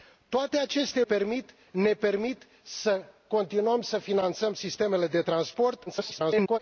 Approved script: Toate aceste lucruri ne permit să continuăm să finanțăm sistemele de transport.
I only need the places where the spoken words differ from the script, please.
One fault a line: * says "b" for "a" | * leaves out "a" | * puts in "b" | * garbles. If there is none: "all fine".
* says "permit" for "lucruri"
* garbles